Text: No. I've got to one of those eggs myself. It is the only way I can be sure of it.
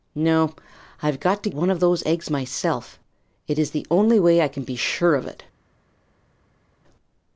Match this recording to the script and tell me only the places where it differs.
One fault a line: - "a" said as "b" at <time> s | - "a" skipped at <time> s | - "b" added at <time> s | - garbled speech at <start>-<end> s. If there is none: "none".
none